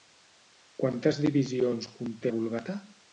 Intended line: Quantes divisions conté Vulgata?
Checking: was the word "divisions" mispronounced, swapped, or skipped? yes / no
no